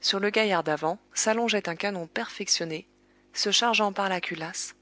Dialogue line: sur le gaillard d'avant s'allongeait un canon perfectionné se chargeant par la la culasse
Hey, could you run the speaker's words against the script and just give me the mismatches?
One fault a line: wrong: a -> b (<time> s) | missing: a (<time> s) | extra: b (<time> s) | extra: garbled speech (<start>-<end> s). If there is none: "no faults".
missing: la (4.2 s)